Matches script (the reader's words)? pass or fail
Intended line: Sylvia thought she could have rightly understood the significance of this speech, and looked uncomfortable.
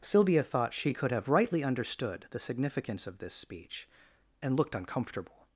pass